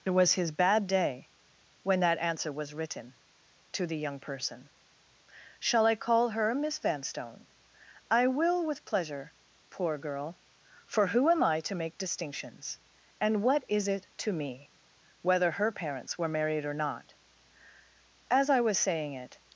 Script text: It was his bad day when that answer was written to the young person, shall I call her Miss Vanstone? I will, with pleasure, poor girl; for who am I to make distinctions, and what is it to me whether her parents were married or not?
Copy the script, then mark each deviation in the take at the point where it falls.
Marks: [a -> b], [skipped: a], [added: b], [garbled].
It was his bad day when that answer was written to the young person, shall I call her Miss Vanstone? I will, with pleasure, poor girl; for who am I to make distinctions, and what is it to me whether her parents were married or not? [added: As I was saying it]